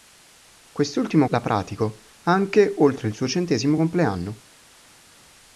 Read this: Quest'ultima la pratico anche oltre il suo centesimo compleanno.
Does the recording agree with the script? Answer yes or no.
yes